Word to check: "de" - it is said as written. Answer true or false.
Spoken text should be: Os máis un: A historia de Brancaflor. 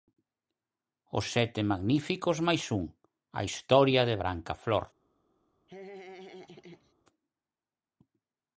true